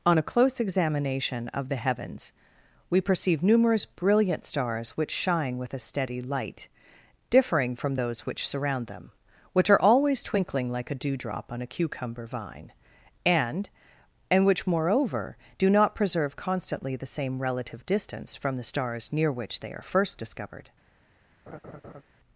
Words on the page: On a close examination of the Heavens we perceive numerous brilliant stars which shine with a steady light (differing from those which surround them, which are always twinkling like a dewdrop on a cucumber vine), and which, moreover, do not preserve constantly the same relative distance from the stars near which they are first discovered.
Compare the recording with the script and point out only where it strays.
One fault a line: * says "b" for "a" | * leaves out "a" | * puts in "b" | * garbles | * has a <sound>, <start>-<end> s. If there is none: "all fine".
* puts in "and"
* has a laugh, 21.5-22.0 s